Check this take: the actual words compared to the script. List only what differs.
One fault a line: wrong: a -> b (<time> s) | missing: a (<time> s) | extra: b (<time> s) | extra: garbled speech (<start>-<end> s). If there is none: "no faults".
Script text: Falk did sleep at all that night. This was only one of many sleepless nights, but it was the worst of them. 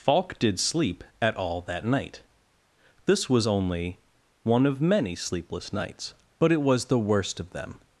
no faults